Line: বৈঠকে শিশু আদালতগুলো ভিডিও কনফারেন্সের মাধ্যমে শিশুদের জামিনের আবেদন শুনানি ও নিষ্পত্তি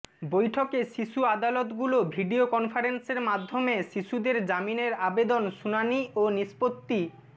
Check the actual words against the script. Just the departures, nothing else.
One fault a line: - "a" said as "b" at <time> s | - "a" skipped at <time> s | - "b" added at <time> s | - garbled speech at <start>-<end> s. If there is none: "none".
none